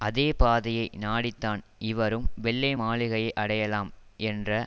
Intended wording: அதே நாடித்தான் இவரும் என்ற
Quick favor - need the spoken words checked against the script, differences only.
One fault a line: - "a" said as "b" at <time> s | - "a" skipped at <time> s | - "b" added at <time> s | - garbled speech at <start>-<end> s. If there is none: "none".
- "பாதையை" added at 0.4 s
- "வெள்ளை மாளிகையை அடையலாம்" added at 2.4 s